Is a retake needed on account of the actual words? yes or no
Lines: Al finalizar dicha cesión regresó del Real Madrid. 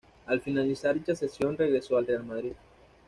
yes